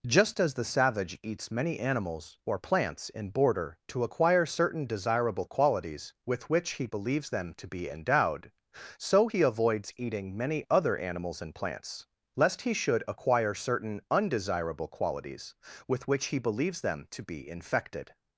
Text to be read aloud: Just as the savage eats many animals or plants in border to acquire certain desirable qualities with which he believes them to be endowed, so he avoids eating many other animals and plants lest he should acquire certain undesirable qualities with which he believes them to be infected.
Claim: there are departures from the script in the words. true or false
false